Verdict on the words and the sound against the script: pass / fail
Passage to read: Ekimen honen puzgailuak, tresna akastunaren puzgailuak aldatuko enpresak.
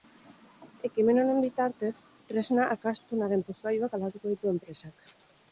fail